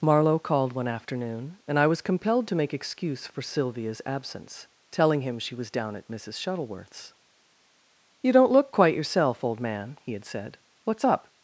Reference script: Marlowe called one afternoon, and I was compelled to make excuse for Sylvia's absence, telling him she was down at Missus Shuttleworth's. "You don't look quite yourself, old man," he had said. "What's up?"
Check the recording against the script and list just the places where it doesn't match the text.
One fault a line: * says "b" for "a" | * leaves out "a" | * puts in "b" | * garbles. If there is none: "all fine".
all fine